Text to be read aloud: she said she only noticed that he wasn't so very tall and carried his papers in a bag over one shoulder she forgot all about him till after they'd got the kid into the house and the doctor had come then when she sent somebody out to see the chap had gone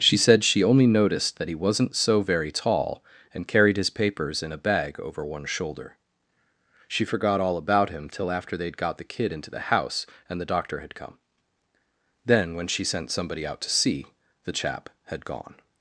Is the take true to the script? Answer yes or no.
yes